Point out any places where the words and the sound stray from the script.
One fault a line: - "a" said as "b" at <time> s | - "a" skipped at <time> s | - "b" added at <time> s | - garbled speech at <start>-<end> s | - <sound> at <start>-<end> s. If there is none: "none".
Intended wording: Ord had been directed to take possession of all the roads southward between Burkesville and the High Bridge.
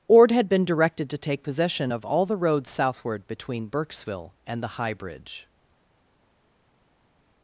none